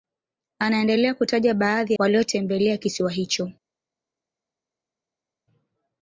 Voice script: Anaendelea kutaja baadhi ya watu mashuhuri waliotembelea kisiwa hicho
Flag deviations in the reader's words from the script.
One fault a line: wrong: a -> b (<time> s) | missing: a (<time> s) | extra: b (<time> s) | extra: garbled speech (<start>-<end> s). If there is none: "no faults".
missing: ya watu mashuhuri (1.9 s)